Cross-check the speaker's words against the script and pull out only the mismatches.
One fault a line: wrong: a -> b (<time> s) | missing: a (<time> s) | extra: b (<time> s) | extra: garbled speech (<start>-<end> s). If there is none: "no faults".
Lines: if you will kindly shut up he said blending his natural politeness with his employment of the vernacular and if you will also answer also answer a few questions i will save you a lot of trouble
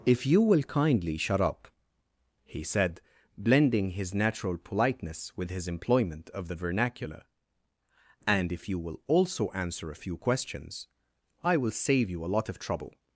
missing: also answer (9.9 s)